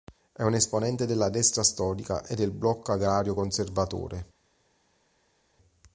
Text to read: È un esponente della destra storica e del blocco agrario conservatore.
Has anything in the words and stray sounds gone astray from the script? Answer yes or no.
no